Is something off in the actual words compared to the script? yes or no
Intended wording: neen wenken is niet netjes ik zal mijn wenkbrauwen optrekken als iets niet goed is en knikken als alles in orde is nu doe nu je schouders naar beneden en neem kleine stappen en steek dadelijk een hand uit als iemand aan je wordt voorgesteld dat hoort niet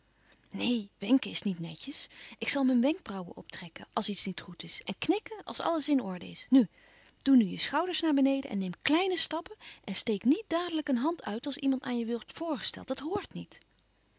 yes